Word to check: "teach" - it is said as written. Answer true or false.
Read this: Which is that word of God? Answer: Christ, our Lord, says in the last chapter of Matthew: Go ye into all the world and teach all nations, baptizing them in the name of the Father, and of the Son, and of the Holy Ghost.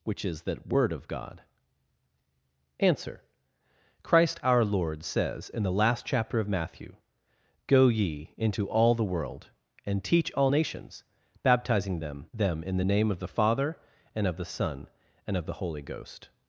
true